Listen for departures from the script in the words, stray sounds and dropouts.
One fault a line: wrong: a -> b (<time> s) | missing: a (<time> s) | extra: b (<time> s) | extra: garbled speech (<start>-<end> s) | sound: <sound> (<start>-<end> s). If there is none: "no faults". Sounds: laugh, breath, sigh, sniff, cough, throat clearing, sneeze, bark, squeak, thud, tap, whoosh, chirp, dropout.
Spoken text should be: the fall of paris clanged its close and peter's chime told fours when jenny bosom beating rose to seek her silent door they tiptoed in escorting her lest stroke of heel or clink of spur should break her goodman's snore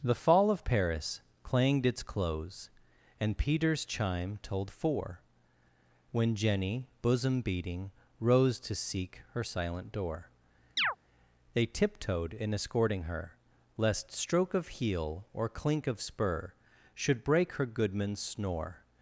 wrong: fours -> four (4.7 s)
sound: chirp (10.8-11.0 s)